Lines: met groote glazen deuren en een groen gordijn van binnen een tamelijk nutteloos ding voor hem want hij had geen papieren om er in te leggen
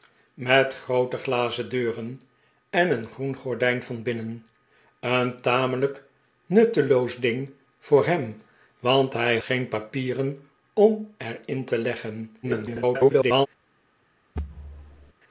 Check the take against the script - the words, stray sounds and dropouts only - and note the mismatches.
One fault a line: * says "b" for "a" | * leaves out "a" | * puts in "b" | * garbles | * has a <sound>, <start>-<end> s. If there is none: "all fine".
* leaves out "had"
* garbles
* has a thud, 14.4-15.1 s